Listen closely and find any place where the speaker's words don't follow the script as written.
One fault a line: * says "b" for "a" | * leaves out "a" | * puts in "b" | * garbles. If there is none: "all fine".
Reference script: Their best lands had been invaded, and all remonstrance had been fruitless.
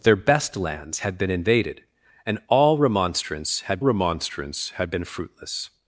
* puts in "remonstrance had"